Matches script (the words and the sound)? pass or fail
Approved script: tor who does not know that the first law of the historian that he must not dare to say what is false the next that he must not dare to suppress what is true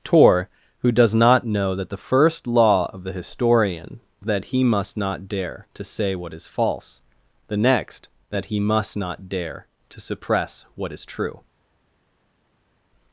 pass